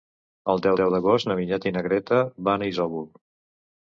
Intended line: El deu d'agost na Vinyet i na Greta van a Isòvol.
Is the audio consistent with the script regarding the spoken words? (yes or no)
no